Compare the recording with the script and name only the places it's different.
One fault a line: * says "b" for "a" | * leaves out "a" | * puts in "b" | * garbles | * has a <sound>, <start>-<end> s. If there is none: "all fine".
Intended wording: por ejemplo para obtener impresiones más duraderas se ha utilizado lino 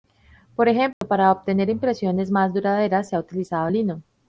* has a dropout, 0.9-1.0 s